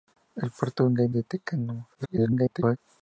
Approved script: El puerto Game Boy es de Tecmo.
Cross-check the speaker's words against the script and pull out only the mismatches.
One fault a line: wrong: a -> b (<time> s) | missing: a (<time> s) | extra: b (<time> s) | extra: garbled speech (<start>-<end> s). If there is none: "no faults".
missing: Boy es (1.1 s)
extra: garbled speech (1.9-2.8 s)